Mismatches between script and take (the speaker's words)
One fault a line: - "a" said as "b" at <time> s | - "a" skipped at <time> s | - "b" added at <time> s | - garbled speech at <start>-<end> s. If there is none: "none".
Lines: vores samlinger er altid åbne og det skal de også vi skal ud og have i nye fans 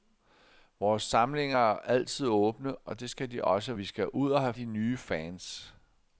none